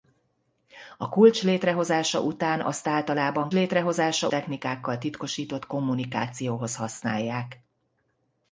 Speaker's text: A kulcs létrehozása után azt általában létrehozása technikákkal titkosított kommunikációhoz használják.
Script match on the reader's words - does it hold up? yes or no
yes